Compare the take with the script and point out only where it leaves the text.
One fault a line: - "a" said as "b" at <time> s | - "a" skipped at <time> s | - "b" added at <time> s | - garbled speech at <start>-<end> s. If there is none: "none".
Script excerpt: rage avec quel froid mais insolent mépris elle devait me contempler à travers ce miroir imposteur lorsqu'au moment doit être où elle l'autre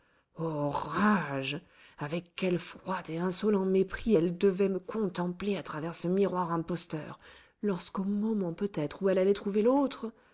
- "mais" said as "et" at 3.1 s
- "doit" said as "peut" at 8.5 s
- "allait trouver" added at 9.2 s